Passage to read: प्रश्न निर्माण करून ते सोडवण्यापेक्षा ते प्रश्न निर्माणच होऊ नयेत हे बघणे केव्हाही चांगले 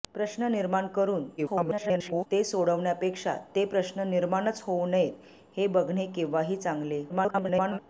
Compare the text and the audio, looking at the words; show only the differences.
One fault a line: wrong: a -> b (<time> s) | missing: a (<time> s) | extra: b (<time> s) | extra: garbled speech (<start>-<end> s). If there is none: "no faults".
extra: garbled speech (1.4-2.3 s)
extra: garbled speech (7.1-7.8 s)